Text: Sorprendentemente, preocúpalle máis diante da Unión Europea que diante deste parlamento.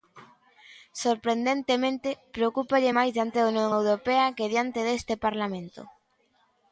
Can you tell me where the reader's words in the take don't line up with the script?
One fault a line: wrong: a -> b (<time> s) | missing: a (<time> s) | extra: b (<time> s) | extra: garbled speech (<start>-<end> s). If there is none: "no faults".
no faults